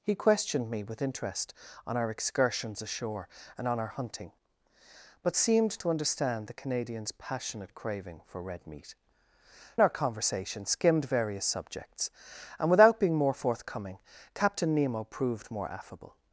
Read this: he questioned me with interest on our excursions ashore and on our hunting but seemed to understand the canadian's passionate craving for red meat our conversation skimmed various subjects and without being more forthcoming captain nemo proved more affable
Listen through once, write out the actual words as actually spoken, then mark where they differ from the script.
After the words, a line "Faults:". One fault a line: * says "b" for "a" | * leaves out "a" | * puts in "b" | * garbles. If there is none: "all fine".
he questioned me with interest on our excursions ashore and on our hunting but seemed to understand the canadian's passionate craving for red meat our conversation skimmed various subjects and without being more forthcoming captain nemo proved more affable
Faults:
all fine